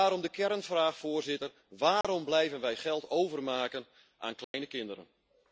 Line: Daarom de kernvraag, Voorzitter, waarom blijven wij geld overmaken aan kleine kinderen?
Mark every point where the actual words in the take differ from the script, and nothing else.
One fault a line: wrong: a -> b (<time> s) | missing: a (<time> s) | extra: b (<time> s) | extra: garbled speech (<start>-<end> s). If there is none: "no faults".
no faults